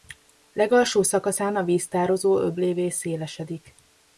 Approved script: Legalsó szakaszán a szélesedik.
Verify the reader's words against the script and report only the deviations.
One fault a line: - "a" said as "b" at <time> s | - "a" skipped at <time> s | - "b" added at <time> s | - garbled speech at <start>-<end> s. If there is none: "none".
- "víztározó öblévé" added at 1.6 s